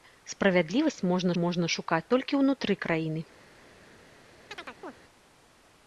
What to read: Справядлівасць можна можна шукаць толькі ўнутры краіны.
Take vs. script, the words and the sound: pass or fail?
fail